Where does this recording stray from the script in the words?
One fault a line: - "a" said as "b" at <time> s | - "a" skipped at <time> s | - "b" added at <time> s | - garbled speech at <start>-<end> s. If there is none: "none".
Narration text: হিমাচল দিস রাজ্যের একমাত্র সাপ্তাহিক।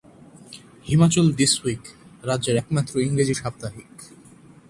- "উইক" added at 1.6 s
- "ইংরেজি" added at 3.0 s